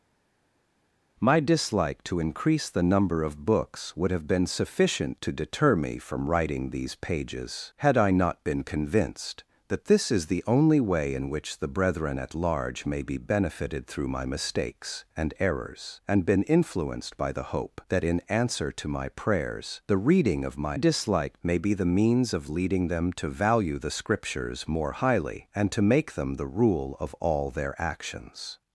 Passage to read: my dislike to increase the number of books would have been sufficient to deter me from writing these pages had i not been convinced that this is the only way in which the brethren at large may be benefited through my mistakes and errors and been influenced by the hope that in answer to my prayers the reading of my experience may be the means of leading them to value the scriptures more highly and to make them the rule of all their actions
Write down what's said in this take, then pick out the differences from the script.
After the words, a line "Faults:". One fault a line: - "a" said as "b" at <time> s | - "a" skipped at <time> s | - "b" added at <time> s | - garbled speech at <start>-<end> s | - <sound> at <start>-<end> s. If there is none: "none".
my dislike to increase the number of books would have been sufficient to deter me from writing these pages had i not been convinced that this is the only way in which the brethren at large may be benefited through my mistakes and errors and been influenced by the hope that in answer to my prayers the reading of my dislike may be the means of leading them to value the scriptures more highly and to make them the rule of all their actions
Faults:
- "experience" said as "dislike" at 20.7 s